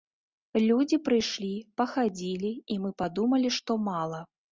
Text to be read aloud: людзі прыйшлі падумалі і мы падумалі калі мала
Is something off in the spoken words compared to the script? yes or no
yes